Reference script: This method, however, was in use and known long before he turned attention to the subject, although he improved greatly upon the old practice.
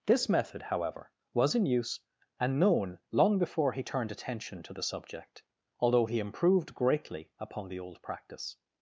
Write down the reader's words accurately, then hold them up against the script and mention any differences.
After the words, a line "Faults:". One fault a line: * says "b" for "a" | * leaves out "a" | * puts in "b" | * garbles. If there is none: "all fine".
This method, however, was in use and known long before he turned attention to the subject, although he improved greatly upon the old practice.
Faults:
all fine